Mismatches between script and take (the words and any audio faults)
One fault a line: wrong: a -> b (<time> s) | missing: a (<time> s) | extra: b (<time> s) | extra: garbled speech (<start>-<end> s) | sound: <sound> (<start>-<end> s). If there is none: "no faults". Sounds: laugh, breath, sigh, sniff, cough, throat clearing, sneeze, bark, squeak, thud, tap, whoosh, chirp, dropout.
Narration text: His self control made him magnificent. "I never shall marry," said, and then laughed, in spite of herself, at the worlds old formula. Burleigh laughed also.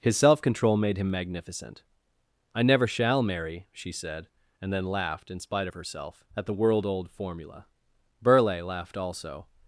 extra: she (3.7 s)
wrong: worlds -> world (6.5 s)